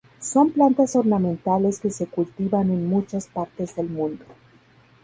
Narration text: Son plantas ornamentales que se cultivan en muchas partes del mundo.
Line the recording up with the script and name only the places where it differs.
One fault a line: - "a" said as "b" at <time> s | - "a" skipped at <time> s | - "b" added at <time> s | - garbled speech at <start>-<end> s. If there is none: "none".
none